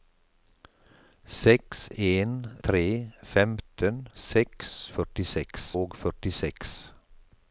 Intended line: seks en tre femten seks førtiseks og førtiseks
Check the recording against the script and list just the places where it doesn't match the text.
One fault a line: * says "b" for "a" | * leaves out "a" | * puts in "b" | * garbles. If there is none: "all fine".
all fine